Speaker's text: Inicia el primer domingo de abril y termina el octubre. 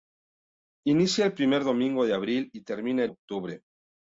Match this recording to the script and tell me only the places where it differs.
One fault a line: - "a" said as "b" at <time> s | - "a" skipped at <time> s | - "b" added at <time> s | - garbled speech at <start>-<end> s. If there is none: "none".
none